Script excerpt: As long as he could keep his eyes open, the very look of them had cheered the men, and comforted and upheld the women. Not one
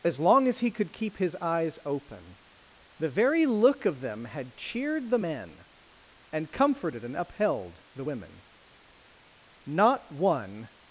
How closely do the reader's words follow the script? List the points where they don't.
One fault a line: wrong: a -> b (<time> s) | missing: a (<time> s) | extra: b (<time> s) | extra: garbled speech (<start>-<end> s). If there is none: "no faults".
no faults